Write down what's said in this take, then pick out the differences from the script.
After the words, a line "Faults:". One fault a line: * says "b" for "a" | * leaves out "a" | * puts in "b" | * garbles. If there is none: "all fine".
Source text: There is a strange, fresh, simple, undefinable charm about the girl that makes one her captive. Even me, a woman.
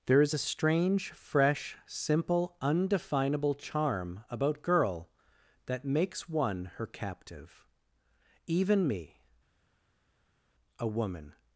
There is a strange, fresh, simple, undefinable charm about girl that makes one her captive. Even me, a woman.
Faults:
* leaves out "the"